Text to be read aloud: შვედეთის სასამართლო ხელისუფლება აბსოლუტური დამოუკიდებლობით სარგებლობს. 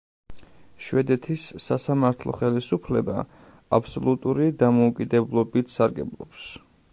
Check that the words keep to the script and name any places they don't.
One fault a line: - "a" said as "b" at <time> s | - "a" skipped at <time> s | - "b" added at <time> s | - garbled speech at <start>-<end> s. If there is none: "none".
none